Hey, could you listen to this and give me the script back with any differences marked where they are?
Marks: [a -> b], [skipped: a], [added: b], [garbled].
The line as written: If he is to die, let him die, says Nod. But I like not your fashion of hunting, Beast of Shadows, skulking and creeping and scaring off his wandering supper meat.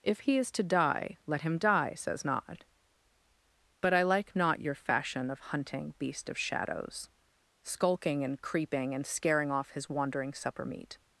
If he is to die, let him die, says Nod. But I like not your fashion of hunting, Beast of Shadows, skulking and creeping and scaring off his wandering supper meat.